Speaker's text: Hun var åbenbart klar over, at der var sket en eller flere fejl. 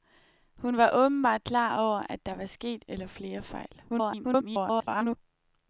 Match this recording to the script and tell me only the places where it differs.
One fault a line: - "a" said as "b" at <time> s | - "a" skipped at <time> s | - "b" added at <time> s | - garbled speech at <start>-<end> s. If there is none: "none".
- "en" skipped at 2.9 s
- garbled speech at 3.9-5.2 s